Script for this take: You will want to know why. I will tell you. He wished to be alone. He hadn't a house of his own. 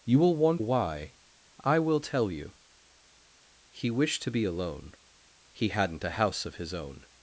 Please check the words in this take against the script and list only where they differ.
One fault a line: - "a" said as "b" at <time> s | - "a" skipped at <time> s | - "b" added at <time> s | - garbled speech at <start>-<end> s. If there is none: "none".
- "to know" skipped at 0.6 s